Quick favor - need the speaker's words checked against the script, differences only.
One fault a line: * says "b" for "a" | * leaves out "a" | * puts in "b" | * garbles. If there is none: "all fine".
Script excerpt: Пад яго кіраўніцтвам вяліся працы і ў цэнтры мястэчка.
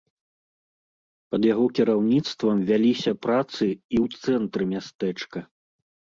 all fine